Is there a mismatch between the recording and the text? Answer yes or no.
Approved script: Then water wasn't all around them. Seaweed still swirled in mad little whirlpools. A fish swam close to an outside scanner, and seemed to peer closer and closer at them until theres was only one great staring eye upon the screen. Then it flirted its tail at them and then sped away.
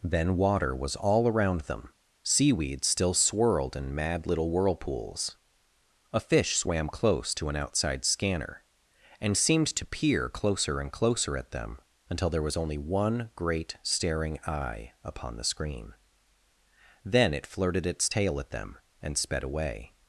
yes